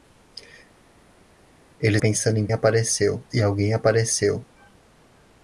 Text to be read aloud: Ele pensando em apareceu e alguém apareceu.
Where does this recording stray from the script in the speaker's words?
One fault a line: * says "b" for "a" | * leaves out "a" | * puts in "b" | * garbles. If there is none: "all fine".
all fine